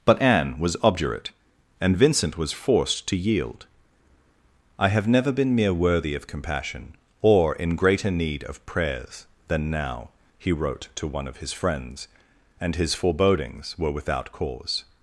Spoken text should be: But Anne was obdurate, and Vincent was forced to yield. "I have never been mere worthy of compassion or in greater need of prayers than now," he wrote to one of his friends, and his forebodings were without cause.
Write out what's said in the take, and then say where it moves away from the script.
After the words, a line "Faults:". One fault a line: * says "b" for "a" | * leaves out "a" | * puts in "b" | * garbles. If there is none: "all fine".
But Anne was obdurate, and Vincent was forced to yield. "I have never been mere worthy of compassion or in greater need of prayers than now," he wrote to one of his friends, and his forebodings were without cause.
Faults:
all fine